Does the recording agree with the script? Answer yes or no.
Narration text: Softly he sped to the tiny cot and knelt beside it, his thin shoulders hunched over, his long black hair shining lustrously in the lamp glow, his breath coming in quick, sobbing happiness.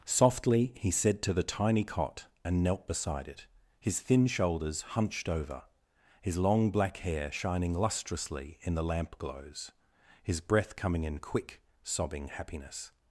no